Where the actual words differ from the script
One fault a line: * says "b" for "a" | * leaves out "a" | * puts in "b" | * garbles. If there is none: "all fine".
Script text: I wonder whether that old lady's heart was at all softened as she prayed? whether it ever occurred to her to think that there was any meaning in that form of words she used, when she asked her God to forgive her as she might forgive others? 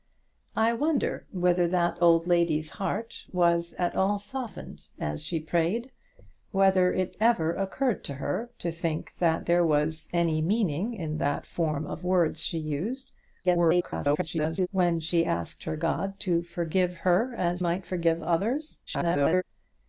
* garbles
* leaves out "she"
* garbles